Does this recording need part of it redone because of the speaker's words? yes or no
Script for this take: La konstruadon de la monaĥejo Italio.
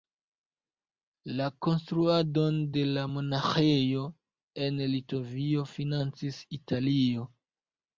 yes